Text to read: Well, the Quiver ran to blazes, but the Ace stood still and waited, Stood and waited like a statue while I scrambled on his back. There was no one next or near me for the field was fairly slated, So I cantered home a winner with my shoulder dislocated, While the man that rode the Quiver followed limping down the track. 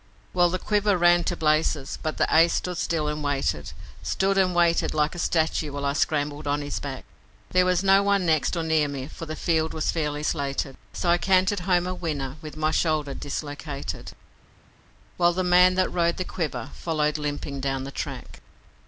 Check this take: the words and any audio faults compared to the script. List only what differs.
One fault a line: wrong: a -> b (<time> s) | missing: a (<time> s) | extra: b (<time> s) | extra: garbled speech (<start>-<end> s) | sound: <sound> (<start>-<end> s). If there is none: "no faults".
no faults